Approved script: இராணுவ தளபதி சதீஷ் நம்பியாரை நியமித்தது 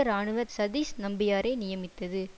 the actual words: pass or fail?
fail